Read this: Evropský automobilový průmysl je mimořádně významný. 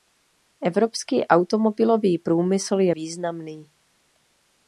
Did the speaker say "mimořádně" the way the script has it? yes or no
no